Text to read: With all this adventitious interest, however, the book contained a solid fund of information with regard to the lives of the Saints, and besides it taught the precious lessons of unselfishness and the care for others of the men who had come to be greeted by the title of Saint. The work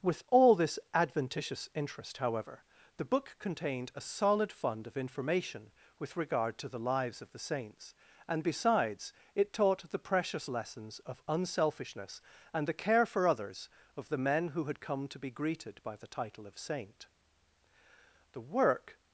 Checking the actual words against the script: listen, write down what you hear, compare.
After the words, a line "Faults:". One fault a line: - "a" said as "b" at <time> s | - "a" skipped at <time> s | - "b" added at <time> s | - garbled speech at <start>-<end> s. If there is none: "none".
With all this adventitious interest, however, the book contained a solid fund of information with regard to the lives of the Saints, and besides it taught the precious lessons of unselfishness and the care for others of the men who had come to be greeted by the title of Saint. The work
Faults:
none